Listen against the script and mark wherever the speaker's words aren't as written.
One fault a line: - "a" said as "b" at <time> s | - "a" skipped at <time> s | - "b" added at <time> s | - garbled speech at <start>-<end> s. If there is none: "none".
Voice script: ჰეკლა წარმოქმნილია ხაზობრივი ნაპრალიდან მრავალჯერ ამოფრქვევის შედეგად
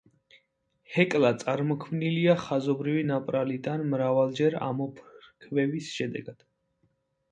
none